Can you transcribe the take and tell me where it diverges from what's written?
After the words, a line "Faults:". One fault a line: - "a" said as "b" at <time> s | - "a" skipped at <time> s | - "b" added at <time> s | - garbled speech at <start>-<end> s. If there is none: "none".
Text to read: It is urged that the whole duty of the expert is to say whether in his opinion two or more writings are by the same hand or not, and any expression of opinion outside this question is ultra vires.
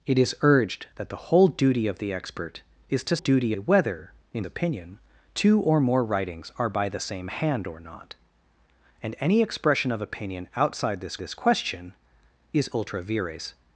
It is urged that the whole duty of the expert is to duty whether in opinion two or more writings are by the same hand or not, and any expression of opinion outside this this question is ultra vires.
Faults:
- "say" said as "duty" at 3.2 s
- "his" skipped at 4.4 s
- "this" added at 11.2 s